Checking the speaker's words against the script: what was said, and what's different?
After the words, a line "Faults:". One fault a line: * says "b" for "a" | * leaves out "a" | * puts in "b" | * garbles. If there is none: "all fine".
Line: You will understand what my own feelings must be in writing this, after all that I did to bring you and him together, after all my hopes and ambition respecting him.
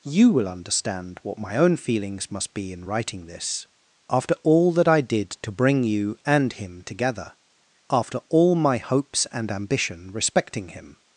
You will understand what my own feelings must be in writing this, after all that I did to bring you and him together, after all my hopes and ambition respecting him.
Faults:
all fine